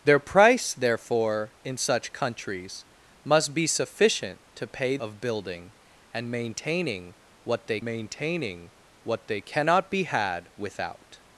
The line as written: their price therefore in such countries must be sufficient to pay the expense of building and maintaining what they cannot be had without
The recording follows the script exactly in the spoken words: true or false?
false